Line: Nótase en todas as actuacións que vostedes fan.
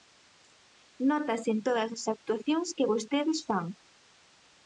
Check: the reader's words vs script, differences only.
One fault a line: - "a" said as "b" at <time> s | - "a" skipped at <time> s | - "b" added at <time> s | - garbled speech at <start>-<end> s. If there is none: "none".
none